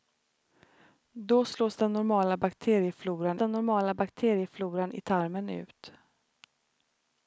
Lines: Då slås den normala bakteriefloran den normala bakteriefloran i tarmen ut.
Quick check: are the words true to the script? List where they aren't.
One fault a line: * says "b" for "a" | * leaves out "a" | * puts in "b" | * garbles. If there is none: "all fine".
all fine